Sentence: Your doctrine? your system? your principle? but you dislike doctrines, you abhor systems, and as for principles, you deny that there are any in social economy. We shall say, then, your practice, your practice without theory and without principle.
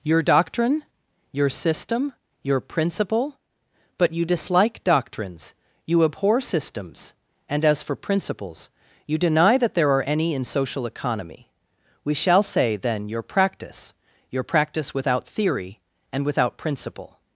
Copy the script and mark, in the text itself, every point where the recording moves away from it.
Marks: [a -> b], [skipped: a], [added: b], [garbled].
Your doctrine? your system? your principle? but you dislike doctrines, you abhor systems, and as for principles, you deny that there are any in social economy. We shall say, then, your practice, your practice without theory and without principle.